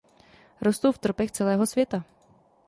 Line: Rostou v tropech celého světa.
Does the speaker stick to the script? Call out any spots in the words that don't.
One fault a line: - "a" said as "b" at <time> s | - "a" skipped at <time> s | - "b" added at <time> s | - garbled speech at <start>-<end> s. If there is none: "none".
none